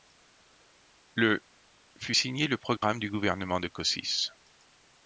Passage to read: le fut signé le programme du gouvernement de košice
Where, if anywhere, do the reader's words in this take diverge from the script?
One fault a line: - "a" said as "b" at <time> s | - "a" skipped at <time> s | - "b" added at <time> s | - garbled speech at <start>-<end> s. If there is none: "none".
none